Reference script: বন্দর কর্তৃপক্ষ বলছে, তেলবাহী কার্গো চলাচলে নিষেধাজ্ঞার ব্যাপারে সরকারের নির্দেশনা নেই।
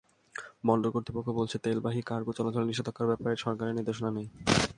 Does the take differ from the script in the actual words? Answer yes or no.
no